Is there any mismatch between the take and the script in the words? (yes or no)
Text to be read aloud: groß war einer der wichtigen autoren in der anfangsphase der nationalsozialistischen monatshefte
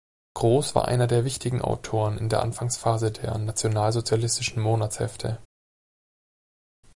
no